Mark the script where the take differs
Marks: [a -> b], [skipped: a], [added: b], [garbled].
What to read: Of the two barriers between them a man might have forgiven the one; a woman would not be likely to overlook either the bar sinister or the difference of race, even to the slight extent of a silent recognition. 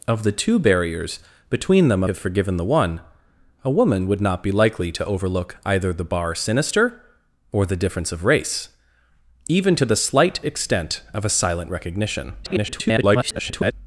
Of the two barriers between them a [skipped: man might] have forgiven the one; a woman would not be likely to overlook either the bar sinister or the difference of race, even to the slight extent of a silent recognition. [garbled]